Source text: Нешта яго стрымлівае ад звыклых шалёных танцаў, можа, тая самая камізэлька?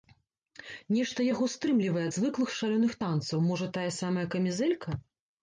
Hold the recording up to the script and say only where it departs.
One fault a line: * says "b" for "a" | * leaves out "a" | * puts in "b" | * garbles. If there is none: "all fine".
all fine